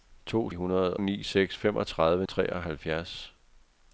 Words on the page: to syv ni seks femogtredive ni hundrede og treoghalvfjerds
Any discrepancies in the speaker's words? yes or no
yes